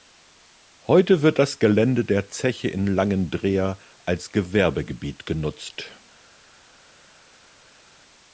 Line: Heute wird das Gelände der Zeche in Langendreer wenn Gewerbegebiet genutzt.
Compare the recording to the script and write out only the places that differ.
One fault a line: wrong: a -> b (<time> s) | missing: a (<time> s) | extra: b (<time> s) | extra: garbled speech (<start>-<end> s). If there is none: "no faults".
wrong: wenn -> als (4.0 s)